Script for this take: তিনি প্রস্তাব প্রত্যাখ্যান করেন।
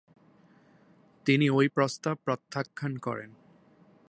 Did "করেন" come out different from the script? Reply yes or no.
no